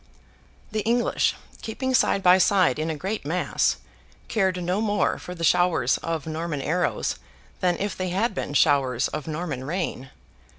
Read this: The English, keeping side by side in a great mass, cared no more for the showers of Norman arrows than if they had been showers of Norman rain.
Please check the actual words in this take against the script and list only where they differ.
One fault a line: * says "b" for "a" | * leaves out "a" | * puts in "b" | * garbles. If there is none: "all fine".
all fine